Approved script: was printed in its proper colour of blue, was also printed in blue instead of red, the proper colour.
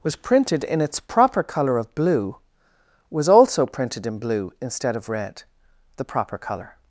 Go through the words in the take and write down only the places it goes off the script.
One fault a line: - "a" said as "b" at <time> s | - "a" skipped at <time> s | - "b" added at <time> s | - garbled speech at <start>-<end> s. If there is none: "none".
none